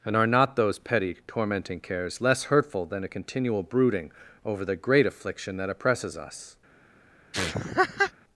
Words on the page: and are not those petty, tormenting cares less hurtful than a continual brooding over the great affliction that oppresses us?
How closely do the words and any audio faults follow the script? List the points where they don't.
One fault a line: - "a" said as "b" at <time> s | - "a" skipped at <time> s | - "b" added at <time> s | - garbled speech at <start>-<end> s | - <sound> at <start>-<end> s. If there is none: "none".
- laugh at 7.3-8.1 s